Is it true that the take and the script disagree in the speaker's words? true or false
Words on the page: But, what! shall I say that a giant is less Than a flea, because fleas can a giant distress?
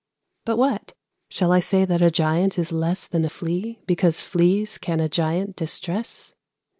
false